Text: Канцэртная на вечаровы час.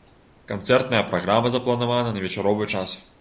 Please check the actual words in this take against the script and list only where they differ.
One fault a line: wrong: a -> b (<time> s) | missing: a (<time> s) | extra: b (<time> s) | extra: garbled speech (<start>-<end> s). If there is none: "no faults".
extra: праграма запланавана (1.1 s)